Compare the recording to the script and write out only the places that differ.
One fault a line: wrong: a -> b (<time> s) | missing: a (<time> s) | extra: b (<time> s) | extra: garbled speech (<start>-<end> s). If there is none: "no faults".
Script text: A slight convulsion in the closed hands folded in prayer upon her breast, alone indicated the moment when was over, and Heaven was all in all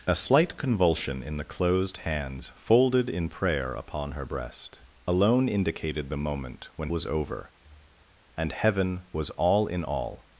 no faults